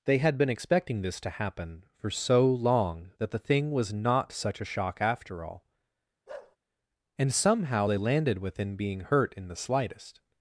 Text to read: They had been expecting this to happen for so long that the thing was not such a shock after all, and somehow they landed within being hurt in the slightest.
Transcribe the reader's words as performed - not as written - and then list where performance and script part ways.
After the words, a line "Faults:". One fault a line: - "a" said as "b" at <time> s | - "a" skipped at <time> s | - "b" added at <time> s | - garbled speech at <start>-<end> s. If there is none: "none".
They had been expecting this to happen for so long that the thing was not such a shock after all, and somehow they landed within being hurt in the slightest.
Faults:
none